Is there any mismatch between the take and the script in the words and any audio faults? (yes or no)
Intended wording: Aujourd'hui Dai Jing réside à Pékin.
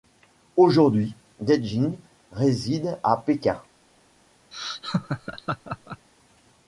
yes